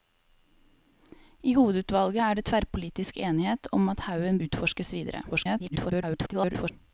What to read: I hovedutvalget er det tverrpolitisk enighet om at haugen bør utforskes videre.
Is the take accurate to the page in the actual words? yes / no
no